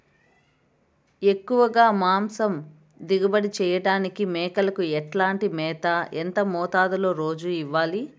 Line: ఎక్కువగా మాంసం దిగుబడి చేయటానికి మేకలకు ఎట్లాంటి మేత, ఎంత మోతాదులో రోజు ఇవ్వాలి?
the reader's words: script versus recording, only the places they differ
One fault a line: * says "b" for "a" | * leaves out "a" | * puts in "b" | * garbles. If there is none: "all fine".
all fine